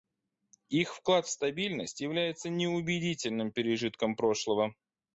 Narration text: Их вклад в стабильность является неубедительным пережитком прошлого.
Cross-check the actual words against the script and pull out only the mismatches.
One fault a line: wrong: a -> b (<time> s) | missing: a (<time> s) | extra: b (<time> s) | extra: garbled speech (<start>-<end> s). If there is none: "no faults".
no faults